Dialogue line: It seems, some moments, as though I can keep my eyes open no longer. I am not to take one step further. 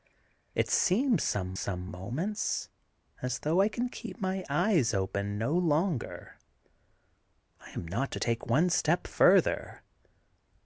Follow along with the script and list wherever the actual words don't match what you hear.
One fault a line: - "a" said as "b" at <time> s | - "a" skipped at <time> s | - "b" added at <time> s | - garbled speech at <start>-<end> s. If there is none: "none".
- "some" added at 1.5 s